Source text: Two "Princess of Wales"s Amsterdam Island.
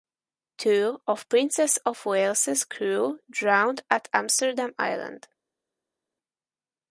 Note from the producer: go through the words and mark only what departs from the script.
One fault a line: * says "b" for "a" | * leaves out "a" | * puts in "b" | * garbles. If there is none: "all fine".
* puts in "of"
* puts in "crew drowned at"